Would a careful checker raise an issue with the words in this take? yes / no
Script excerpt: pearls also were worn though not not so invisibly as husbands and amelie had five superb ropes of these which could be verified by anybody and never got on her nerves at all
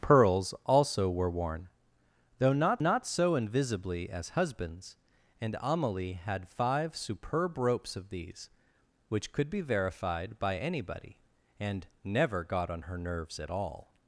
no